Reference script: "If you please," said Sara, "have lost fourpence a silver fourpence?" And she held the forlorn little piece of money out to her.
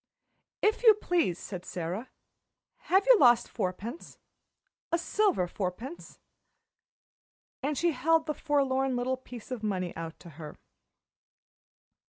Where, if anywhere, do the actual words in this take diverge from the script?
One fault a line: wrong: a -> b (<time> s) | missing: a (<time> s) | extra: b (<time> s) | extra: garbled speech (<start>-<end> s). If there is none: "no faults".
extra: you (3.0 s)